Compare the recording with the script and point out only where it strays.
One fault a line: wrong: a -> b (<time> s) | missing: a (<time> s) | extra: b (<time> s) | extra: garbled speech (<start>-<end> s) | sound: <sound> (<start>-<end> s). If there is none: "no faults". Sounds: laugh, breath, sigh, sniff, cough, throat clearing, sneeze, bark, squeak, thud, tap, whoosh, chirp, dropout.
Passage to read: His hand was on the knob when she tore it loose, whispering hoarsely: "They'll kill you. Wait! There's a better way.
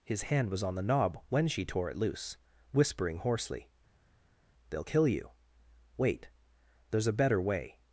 no faults